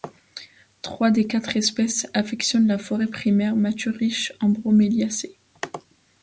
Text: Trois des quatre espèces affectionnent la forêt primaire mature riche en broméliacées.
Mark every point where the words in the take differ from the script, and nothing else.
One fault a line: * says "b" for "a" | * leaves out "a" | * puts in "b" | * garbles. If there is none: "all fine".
all fine